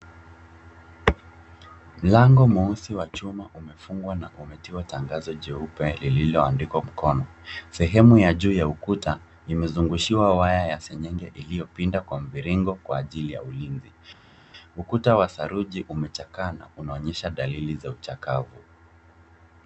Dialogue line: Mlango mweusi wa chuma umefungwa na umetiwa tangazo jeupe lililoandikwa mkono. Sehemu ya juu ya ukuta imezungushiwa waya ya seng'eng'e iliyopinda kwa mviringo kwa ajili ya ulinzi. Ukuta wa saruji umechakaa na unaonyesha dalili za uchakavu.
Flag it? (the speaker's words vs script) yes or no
no